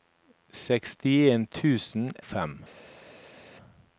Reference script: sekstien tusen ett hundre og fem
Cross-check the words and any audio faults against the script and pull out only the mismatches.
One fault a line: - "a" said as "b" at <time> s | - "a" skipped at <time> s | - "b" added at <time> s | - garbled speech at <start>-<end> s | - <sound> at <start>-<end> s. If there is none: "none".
- "ett hundre og" skipped at 2.1 s